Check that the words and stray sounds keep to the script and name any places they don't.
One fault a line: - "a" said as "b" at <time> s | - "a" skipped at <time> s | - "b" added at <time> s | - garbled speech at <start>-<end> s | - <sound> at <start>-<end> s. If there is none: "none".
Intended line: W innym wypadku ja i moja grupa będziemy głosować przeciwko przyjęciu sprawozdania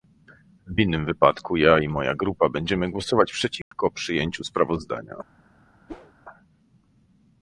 - dropout at 3.6-3.7 s
- whoosh at 5.9-6.1 s